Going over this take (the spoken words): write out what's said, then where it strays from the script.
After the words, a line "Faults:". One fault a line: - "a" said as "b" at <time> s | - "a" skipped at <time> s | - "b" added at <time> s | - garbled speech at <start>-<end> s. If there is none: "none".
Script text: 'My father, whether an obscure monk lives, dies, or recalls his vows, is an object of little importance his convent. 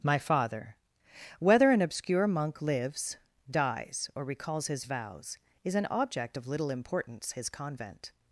'My father, whether an obscure monk lives, dies, or recalls his vows, is an object of little importance his convent.
Faults:
none